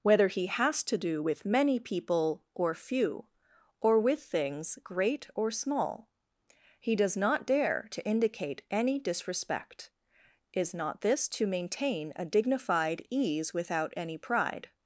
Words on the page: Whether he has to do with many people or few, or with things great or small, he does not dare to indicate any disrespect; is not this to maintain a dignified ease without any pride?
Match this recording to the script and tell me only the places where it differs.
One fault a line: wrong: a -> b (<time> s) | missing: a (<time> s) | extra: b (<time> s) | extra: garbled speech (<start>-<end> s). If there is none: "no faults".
no faults